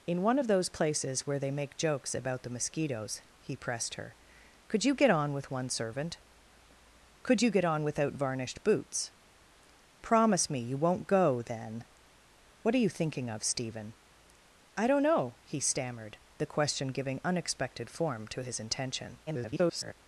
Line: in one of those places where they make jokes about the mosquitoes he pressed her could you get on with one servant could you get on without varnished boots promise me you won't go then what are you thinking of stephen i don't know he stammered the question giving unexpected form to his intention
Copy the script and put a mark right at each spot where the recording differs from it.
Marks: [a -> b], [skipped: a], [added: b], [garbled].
in one of those places where they make jokes about the mosquitoes he pressed her could you get on with one servant could you get on without varnished boots promise me you won't go then what are you thinking of stephen i don't know he stammered the question giving unexpected form to his intention [garbled]